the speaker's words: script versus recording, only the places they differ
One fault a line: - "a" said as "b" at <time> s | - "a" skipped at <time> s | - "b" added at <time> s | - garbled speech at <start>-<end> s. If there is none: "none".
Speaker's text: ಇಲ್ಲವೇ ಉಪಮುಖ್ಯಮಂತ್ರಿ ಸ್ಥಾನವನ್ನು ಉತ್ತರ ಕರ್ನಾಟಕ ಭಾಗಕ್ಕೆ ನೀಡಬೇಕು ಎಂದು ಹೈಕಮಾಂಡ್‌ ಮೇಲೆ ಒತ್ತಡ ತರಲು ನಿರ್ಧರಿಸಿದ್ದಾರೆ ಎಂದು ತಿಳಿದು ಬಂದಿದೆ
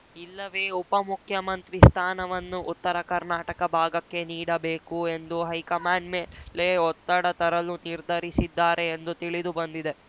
none